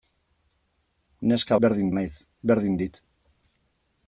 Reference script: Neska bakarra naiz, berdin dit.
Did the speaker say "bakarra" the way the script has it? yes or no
no